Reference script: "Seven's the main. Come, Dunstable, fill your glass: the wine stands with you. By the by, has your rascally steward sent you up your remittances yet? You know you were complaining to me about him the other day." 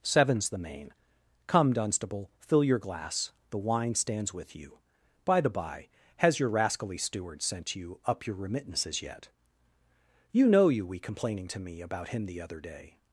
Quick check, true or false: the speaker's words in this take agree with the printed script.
false